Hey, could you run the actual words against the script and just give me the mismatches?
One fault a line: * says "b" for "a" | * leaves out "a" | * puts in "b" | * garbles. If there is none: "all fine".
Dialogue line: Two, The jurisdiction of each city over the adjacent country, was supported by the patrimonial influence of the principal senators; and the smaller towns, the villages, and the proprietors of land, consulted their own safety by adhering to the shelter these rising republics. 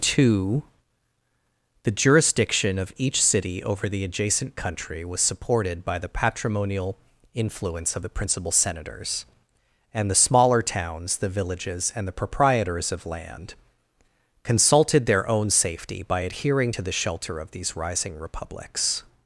* puts in "of"